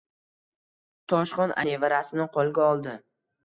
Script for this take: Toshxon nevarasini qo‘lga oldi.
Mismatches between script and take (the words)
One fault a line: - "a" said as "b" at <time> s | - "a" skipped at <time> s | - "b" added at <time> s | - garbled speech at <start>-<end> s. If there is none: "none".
none